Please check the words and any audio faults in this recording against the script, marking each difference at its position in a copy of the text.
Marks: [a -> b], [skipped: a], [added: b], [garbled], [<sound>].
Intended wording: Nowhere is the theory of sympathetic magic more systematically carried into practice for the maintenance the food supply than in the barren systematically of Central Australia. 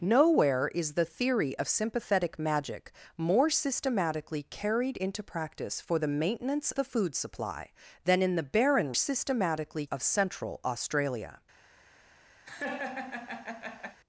Nowhere is the theory of sympathetic magic more systematically carried into practice for the maintenance the food supply than in the barren systematically of Central Australia. [laugh]